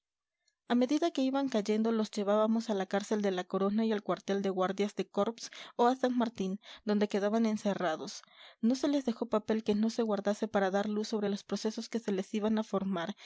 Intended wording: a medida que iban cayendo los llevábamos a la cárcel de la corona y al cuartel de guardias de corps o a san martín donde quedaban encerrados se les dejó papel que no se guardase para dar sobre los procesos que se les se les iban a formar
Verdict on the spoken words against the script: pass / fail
fail